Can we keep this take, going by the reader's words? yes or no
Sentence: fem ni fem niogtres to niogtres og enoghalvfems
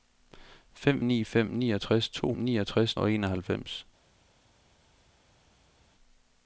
yes